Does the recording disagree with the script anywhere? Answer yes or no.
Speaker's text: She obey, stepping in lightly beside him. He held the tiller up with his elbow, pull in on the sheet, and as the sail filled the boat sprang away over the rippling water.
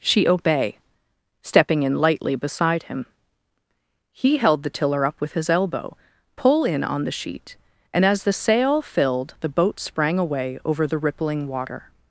no